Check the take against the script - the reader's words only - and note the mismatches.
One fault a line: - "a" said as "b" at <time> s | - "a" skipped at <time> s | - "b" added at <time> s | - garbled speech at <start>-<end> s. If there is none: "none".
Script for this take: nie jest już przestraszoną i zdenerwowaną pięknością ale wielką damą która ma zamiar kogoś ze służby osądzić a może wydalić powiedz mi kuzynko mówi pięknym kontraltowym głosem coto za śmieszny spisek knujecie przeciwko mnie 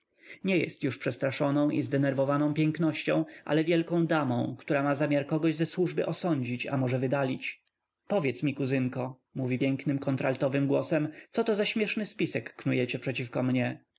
none